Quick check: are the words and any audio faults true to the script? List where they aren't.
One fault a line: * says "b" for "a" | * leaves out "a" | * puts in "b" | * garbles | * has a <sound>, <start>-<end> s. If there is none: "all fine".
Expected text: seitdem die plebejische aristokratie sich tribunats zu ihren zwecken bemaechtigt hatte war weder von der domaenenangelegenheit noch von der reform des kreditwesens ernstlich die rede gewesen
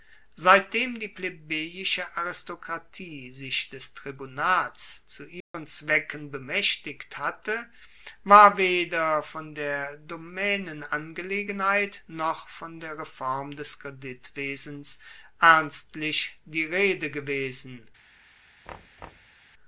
* puts in "des"
* has a dropout, 5.4-5.5 s
* has a thud, 18.7-19.4 s